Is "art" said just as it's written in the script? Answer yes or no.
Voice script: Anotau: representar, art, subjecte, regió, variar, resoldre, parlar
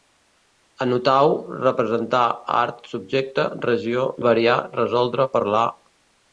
yes